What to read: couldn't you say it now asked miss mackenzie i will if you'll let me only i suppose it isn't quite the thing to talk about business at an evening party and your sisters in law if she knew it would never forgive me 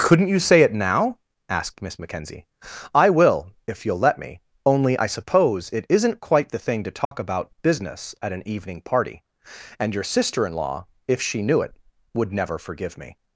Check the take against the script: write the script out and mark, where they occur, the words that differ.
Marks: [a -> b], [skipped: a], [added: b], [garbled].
couldn't you say it now asked miss mackenzie i will if you'll let me only i suppose it isn't quite the thing to talk about business at an evening party and your [sisters -> sister] in law if she knew it would never forgive me